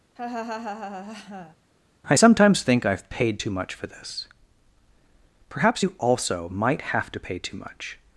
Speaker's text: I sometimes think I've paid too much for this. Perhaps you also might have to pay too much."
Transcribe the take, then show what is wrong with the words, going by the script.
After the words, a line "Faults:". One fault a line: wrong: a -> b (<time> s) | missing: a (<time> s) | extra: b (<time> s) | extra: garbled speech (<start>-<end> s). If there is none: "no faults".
I sometimes think I've paid too much for this. Perhaps you also might have to pay too much."
Faults:
no faults